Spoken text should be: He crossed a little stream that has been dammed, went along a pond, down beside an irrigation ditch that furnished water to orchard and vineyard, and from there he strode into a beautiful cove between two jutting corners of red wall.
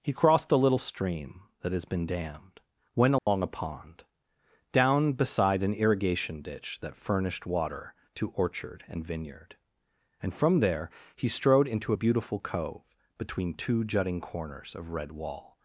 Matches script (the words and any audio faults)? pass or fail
fail